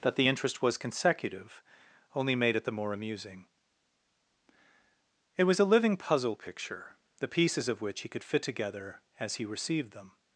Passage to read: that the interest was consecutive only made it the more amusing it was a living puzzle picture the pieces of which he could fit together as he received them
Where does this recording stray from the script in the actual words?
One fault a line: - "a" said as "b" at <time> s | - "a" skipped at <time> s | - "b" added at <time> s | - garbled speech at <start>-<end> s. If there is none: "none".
none